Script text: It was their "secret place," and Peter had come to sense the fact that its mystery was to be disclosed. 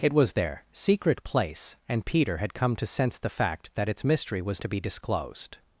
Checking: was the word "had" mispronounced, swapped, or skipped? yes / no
no